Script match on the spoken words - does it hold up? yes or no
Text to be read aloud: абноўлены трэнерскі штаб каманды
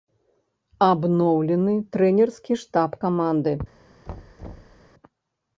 yes